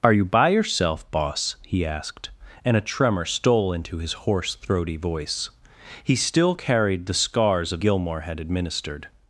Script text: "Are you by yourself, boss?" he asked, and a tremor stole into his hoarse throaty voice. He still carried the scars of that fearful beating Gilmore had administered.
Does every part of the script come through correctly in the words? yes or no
no